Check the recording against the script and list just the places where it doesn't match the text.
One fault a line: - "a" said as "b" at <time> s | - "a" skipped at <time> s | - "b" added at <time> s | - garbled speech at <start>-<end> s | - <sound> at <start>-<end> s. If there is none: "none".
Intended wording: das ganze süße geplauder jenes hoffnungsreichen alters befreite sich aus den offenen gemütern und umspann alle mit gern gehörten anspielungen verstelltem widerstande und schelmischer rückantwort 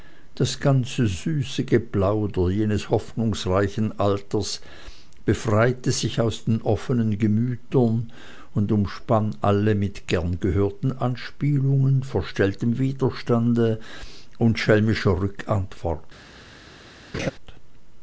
- laugh at 17.1-17.3 s